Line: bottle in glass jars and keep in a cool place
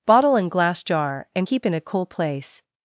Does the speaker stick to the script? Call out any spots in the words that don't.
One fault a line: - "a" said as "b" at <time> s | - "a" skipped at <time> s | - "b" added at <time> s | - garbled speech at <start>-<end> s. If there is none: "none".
- "jars" said as "jar" at 0.8 s